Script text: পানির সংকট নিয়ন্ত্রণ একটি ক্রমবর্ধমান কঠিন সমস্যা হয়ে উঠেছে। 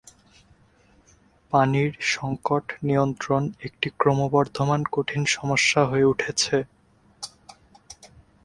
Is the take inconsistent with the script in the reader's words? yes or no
no